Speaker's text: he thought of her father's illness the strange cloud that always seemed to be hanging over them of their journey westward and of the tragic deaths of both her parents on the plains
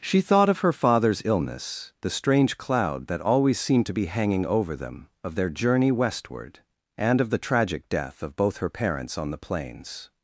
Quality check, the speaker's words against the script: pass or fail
fail